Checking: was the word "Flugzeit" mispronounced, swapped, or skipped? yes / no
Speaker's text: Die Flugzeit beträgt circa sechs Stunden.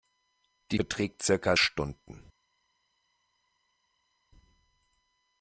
yes